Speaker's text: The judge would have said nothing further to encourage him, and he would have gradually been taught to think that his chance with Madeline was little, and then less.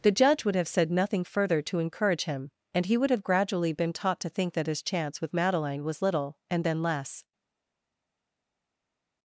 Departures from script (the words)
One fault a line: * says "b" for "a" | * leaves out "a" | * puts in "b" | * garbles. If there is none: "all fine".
all fine